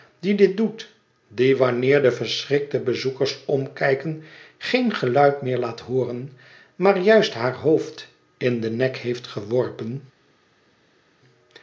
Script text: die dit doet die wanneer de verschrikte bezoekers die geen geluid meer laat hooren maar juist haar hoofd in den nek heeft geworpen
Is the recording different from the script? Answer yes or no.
yes